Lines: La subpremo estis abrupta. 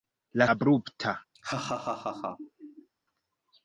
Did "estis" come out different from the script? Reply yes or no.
yes